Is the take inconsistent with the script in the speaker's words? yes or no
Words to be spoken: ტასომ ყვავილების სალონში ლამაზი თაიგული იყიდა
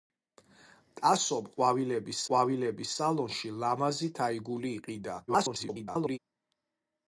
yes